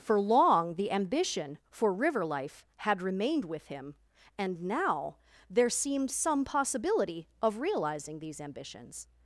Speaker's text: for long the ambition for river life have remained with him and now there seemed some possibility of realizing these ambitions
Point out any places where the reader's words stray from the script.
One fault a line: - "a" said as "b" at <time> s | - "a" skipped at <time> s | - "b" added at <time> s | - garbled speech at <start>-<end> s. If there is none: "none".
- "have" said as "had" at 2.8 s